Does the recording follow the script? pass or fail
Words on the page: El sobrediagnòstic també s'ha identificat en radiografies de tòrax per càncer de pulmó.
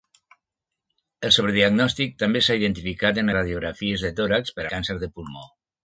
pass